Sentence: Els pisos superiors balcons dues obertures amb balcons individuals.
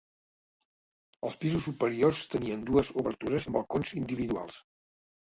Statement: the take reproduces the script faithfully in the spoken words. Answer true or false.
false